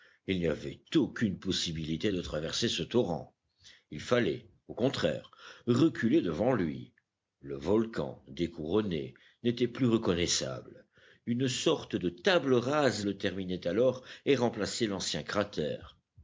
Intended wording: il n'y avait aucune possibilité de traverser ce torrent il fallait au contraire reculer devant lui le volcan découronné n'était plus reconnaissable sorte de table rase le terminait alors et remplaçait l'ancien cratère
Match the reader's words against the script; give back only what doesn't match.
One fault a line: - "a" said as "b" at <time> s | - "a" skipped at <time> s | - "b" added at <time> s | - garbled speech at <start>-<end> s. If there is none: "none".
- "une" added at 11.3 s